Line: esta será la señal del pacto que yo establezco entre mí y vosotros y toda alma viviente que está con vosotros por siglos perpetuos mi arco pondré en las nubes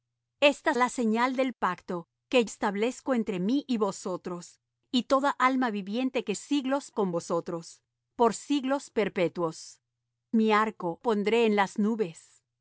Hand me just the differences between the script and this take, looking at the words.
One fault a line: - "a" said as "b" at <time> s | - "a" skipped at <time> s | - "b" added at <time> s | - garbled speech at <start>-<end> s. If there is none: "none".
- "será" skipped at 0.7 s
- "yo" skipped at 2.5 s
- "está" said as "siglos" at 6.3 s